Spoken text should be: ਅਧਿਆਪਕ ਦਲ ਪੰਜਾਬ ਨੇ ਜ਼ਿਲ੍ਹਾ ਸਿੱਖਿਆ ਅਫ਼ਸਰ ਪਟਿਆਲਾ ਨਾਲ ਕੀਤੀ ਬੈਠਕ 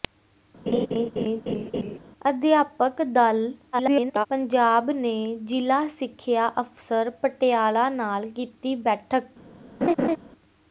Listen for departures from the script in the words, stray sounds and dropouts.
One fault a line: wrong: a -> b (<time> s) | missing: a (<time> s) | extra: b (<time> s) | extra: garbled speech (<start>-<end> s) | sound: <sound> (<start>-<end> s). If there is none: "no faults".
sound: laugh (0.7-2.0 s)
extra: garbled speech (3.7-4.3 s)
sound: laugh (9.8-10.2 s)